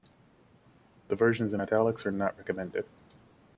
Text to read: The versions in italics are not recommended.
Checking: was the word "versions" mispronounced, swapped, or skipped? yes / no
no